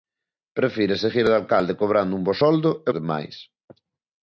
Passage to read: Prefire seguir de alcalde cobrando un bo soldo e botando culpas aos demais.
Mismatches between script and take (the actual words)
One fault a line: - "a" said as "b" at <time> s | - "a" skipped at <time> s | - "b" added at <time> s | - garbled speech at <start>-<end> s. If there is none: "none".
- "botando culpas aos" skipped at 2.9 s